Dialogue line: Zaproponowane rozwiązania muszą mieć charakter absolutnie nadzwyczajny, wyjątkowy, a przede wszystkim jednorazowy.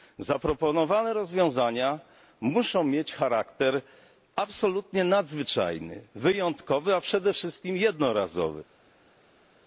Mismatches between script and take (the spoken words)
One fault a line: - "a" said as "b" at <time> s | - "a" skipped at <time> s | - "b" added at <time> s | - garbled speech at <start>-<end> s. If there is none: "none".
none